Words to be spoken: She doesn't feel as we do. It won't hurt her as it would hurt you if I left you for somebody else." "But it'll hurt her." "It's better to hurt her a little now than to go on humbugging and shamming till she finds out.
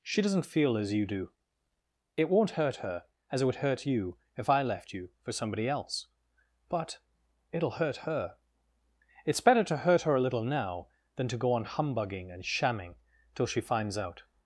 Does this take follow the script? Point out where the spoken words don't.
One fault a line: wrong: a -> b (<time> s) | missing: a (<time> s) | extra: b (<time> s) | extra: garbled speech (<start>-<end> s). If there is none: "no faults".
wrong: we -> you (0.9 s)